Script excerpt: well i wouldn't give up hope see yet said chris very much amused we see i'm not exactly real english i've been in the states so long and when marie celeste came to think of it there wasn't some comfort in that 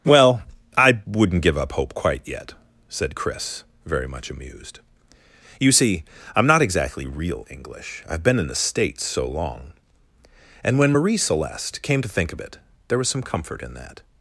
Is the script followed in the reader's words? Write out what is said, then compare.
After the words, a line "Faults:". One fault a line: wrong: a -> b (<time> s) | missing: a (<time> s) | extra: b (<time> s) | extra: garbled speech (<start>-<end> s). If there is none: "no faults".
well i wouldn't give up hope quite yet said chris very much amused you see i'm not exactly real english i've been in the states so long and when marie celeste came to think of it there was some comfort in that
Faults:
wrong: see -> quite (1.9 s)
wrong: we -> you (5.6 s)
wrong: wasn't -> was (13.0 s)